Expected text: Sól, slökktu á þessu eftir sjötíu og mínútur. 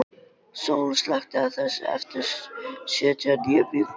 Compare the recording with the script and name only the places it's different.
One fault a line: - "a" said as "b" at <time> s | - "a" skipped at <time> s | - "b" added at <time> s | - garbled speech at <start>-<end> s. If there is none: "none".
- "níu" added at 3.5 s